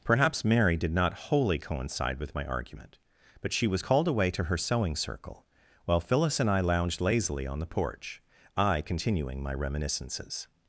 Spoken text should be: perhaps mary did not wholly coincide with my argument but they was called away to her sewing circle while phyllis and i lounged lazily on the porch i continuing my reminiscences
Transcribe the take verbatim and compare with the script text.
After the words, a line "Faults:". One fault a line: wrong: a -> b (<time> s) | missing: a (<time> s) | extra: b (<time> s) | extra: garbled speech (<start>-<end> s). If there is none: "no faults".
perhaps mary did not wholly coincide with my argument but she was called away to her sewing circle while phyllis and i lounged lazily on the porch i continuing my reminiscences
Faults:
wrong: they -> she (3.5 s)